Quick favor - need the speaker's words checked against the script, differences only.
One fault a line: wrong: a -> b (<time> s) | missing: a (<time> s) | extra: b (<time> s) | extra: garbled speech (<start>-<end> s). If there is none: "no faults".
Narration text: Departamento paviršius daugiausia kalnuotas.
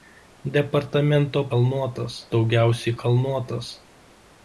wrong: paviršius -> kalnuotas (1.5 s)